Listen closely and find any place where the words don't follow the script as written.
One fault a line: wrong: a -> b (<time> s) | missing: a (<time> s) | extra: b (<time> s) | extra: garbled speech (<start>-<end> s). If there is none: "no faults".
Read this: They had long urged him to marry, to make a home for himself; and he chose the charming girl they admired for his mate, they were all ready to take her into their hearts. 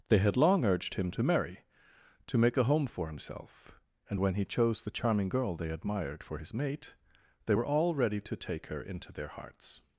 extra: when (4.2 s)